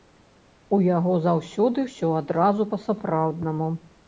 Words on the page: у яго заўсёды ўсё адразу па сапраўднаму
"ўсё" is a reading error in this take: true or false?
false